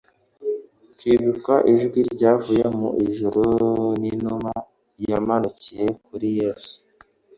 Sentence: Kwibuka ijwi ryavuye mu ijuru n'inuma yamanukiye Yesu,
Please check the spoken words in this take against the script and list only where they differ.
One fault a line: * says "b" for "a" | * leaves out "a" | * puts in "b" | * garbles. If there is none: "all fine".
* puts in "kuri"